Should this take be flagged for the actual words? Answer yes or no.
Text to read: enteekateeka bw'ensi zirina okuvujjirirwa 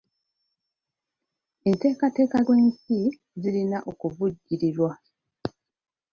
no